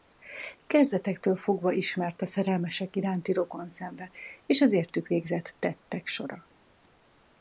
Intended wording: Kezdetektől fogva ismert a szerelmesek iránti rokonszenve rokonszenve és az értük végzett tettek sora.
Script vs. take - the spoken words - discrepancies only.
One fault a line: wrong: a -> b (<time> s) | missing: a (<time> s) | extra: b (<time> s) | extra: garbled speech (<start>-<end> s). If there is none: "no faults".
missing: rokonszenve (4.1 s)